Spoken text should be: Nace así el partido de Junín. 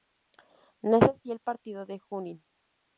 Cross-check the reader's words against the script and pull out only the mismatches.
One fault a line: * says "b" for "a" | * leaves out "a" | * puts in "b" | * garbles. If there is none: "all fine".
all fine